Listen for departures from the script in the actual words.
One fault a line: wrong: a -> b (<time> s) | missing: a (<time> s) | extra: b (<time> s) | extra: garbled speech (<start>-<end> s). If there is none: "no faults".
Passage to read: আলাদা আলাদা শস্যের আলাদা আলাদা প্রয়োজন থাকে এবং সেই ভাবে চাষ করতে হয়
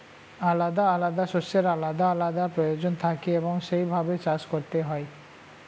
no faults